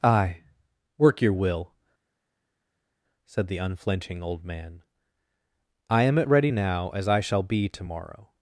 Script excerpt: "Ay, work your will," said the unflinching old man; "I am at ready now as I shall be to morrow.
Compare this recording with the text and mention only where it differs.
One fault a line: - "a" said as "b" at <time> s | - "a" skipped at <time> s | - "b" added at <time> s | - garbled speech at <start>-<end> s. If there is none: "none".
none